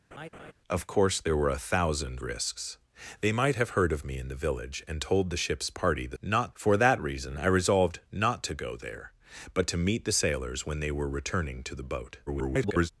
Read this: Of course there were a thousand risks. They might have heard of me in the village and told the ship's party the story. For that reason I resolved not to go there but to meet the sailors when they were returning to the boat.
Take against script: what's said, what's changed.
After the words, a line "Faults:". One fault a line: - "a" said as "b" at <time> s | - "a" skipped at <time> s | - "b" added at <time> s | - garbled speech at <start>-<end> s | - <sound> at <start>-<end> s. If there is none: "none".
Of course there were a thousand risks. They might have heard of me in the village and told the ship's party the not. For that reason I resolved not to go there but to meet the sailors when they were returning to the boat. [garbled]
Faults:
- laugh at 0.1-0.5 s
- "story" said as "not" at 6.2 s
- garbled speech at 12.3-12.9 s